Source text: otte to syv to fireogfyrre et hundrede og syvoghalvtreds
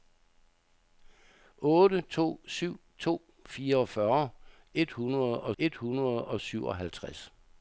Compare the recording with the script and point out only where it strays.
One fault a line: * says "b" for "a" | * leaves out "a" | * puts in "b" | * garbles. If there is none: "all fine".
* puts in "et hundrede og"